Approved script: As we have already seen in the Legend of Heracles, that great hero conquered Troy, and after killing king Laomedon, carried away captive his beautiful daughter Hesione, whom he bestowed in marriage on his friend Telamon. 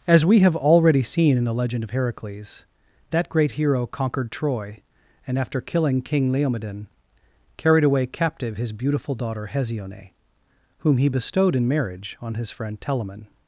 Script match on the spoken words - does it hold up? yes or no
yes